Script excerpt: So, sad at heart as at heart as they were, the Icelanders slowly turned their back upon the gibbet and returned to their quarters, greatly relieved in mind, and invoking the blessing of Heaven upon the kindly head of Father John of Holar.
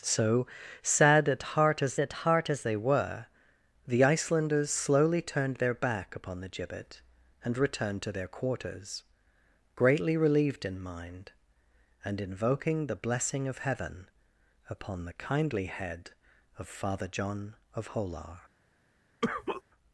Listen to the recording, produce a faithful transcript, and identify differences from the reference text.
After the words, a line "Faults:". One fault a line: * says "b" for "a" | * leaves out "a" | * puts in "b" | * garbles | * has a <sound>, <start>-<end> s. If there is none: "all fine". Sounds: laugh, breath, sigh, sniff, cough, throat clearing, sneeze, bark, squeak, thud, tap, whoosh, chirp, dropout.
So, sad at heart as at heart as they were, the Icelanders slowly turned their back upon the gibbet and returned to their quarters, greatly relieved in mind, and invoking the blessing of Heaven upon the kindly head of Father John of Holar.
Faults:
* has a cough, 19.2-19.6 s